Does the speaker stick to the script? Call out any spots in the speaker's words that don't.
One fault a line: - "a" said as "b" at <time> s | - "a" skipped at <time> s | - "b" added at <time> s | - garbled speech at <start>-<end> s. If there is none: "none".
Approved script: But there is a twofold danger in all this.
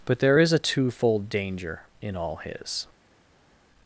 - "this" said as "his" at 2.4 s